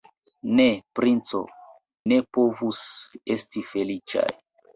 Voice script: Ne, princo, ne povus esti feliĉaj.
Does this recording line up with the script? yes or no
yes